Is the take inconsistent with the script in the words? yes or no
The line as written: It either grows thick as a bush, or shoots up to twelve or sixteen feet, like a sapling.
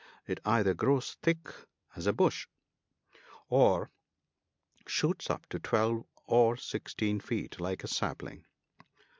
no